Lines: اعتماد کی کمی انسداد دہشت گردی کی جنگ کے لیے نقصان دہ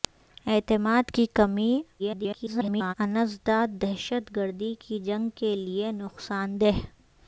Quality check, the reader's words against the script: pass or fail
fail